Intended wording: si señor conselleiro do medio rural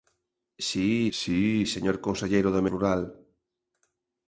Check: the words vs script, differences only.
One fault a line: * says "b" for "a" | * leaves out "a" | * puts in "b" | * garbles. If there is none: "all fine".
* puts in "si"
* leaves out "medio"